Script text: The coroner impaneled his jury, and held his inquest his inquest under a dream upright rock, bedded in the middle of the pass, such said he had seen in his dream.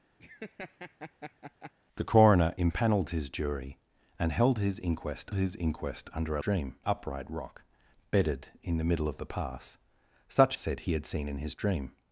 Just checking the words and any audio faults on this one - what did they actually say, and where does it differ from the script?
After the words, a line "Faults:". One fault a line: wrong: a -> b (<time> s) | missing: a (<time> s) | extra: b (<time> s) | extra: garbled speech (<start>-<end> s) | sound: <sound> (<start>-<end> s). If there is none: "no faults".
The coroner impaneled his jury, and held his inquest his inquest under a dream upright rock, bedded in the middle of the pass, such said he had seen in his dream.
Faults:
sound: laugh (0.2-1.7 s)